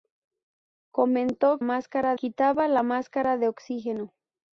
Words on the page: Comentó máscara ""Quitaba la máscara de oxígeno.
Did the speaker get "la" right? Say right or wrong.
right